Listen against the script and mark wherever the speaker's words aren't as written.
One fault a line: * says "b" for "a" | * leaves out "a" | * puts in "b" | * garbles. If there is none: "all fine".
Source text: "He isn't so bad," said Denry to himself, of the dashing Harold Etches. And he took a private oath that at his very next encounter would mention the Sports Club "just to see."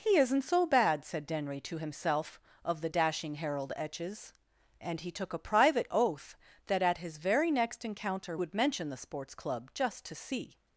all fine